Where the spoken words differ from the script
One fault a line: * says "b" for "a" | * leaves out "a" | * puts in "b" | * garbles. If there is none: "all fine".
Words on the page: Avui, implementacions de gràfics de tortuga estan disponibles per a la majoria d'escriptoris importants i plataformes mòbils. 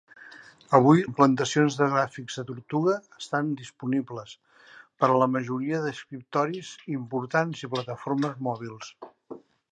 all fine